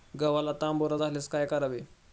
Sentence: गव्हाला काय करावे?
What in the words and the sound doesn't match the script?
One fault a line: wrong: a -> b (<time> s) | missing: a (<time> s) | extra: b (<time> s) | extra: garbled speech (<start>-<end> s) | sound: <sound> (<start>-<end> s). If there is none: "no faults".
extra: तांबेरा झाल्यास (0.5 s)